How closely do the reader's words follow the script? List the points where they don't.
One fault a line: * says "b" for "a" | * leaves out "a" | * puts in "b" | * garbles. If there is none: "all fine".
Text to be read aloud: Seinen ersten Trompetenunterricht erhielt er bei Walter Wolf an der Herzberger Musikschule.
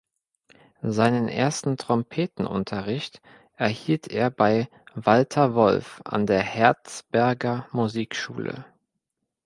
all fine